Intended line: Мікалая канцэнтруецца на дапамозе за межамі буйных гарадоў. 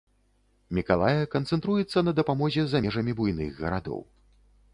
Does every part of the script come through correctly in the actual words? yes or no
yes